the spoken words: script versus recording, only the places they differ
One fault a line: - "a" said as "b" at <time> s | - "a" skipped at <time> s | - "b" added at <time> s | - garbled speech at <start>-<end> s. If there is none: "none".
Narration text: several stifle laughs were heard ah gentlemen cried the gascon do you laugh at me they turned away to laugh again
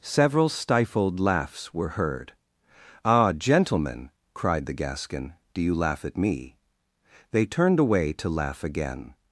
- "stifle" said as "stifled" at 0.5 s